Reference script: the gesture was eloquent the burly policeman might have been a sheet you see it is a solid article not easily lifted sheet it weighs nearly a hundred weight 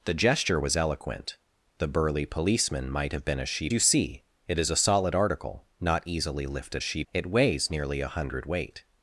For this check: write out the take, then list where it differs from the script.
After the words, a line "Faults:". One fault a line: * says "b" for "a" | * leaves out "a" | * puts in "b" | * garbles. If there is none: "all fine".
the gesture was eloquent the burly policeman might have been a sheet you see it is a solid article not easily lifted sheet it weighs nearly a hundred weight
Faults:
all fine